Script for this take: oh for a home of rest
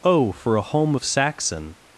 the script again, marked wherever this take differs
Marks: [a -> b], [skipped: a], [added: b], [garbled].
oh for a home of [rest -> saxon]